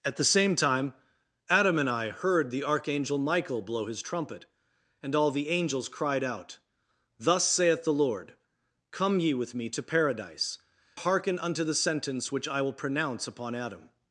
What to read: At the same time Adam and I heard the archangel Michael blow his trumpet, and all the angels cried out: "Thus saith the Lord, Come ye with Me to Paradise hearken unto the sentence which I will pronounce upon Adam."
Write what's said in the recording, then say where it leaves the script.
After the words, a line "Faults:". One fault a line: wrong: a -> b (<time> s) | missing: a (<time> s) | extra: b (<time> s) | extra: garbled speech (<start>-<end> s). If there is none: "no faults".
At the same time Adam and I heard the archangel Michael blow his trumpet, and all the angels cried out: "Thus saith the Lord, Come ye with Me to Paradise hearken unto the sentence which I will pronounce upon Adam."
Faults:
no faults